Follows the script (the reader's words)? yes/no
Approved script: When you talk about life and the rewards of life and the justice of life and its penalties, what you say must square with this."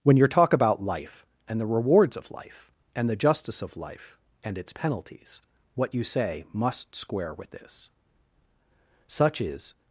no